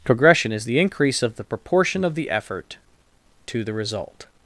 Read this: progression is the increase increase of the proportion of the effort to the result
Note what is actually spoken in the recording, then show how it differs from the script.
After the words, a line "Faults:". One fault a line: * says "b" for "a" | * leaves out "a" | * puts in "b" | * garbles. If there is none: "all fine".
progression is the increase of the proportion of the effort to the result
Faults:
* leaves out "increase"